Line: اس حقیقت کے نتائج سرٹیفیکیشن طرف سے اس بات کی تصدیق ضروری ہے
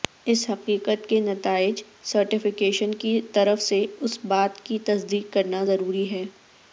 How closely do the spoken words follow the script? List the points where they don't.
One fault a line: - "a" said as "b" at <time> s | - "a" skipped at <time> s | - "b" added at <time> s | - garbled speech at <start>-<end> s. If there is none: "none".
- "کی" added at 3.0 s
- "کرنا" added at 5.3 s